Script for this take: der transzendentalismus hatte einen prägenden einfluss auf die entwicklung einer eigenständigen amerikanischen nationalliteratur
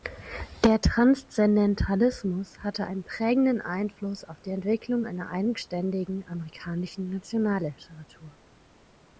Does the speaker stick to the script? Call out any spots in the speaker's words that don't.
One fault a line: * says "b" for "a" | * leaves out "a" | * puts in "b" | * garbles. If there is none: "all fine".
all fine